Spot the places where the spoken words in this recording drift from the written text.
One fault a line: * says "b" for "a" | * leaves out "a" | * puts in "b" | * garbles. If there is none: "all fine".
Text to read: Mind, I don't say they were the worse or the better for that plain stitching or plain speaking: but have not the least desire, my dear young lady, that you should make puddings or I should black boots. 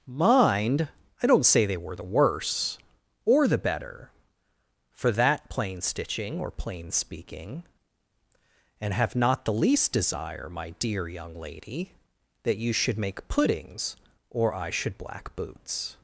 * says "and" for "but"